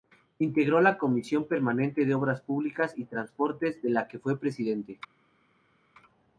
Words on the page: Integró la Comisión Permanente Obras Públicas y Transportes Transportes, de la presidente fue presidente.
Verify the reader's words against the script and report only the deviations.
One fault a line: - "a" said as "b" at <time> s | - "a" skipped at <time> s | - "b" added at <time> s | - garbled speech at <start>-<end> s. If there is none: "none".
- "de" added at 2.0 s
- "Transportes" skipped at 3.8 s
- "presidente" said as "que" at 4.1 s